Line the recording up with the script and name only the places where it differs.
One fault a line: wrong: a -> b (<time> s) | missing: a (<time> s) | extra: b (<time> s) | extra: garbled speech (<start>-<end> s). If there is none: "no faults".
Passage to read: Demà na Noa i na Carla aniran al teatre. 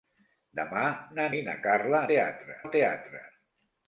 missing: Noa (1.3 s)
wrong: aniran -> teatre (2.1 s)